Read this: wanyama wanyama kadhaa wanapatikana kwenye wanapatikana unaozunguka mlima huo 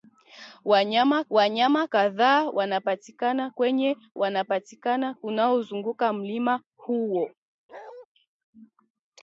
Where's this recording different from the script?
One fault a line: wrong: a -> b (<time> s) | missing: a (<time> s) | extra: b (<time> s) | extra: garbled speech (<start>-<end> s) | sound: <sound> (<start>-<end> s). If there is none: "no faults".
sound: bark (7.7-8.1 s)